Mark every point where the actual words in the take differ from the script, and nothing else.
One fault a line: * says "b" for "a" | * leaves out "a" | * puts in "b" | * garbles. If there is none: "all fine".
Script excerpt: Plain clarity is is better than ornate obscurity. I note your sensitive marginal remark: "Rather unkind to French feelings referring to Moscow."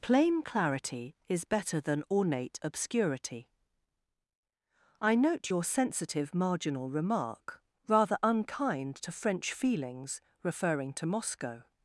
* leaves out "is"